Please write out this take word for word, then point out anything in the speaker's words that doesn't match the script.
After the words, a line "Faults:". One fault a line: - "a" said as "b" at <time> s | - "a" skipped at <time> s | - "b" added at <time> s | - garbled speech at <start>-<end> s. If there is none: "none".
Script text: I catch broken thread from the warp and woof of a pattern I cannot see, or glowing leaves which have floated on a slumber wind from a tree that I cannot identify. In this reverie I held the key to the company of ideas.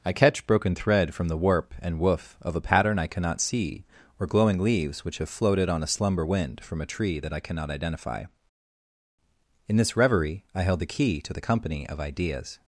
I catch broken thread from the warp and woof of a pattern I cannot see, or glowing leaves which have floated on a slumber wind from a tree that I cannot identify. In this reverie I held the key to the company of ideas.
Faults:
none